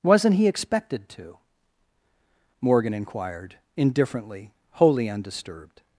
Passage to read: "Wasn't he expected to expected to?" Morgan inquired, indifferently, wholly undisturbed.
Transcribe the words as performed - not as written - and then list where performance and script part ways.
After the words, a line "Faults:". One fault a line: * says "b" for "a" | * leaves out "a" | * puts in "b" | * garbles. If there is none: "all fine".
"Wasn't he expected to?" Morgan inquired, indifferently, wholly undisturbed.
Faults:
* leaves out "expected to"